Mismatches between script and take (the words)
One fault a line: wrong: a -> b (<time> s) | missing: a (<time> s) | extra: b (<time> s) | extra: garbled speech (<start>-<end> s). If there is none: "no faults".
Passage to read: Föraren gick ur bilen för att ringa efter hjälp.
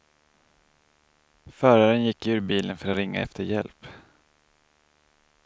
no faults